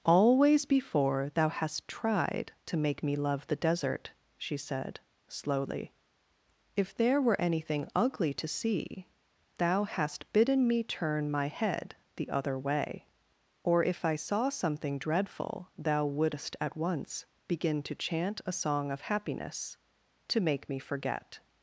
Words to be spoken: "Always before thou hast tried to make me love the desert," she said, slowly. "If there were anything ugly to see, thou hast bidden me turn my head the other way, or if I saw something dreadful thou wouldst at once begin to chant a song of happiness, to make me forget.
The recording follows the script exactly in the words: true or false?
true